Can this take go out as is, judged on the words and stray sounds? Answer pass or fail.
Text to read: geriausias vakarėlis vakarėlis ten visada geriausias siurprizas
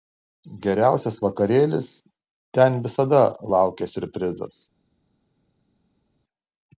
fail